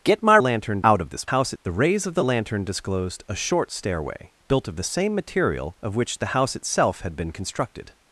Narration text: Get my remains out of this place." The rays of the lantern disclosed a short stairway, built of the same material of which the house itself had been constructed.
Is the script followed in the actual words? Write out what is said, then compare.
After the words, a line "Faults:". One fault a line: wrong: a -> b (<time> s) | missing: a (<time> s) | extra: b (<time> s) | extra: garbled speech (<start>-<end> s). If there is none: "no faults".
Get my lantern out of this house." The rays of the lantern disclosed a short stairway, built of the same material of which the house itself had been constructed.
Faults:
wrong: remains -> lantern (0.4 s)
wrong: place -> house (1.2 s)